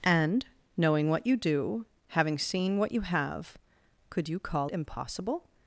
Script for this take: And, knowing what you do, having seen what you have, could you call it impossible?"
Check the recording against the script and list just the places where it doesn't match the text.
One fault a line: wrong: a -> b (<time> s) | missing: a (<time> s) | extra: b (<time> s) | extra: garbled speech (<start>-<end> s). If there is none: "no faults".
missing: it (4.7 s)